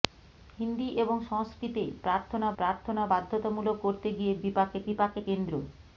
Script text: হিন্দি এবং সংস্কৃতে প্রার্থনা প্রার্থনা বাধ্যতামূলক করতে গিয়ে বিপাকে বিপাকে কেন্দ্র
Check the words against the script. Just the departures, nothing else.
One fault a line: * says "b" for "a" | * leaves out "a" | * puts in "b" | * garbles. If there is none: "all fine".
all fine